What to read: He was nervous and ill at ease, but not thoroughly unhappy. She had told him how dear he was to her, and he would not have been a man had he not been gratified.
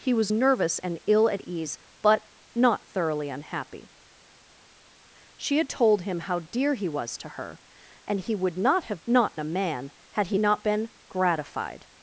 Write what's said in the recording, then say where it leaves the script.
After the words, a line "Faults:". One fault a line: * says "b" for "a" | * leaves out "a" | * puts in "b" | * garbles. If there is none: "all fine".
He was nervous and ill at ease, but not thoroughly unhappy. She had told him how dear he was to her, and he would not have not a man had he not been gratified.
Faults:
* says "not" for "been"